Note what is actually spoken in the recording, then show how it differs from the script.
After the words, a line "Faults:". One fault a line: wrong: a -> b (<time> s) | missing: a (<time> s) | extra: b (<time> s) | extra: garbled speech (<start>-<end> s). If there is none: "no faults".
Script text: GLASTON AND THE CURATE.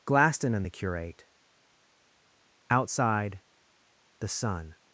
GLASTON AND THE CURATE. Outside, the sun
Faults:
extra: Outside the sun (2.7 s)